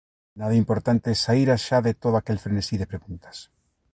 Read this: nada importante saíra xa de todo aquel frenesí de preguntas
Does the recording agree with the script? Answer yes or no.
yes